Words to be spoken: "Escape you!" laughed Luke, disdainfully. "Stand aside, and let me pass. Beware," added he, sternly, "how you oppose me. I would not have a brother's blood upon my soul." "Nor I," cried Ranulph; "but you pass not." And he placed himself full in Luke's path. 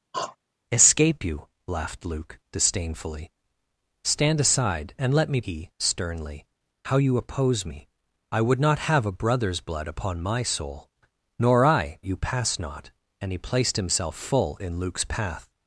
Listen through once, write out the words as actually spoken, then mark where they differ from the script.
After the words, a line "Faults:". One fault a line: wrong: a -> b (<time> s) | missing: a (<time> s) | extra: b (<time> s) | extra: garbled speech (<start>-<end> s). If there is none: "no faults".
"Escape you!" laughed Luke, disdainfully. "Stand aside, and let me he, sternly, "how you oppose me. I would not have a brother's blood upon my soul." "Nor I," you pass not." And he placed himself full in Luke's path.
Faults:
missing: pass Beware added (5.4 s)
missing: cried Ranulph but (12.0 s)